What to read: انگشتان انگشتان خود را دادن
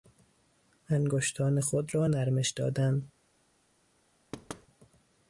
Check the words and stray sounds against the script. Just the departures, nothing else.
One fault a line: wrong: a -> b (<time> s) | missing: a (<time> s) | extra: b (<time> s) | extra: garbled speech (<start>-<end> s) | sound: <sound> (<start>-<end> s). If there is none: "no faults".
missing: انگشتان (1.6 s)
extra: نرمش (2.1 s)
sound: thud (4.3-4.7 s)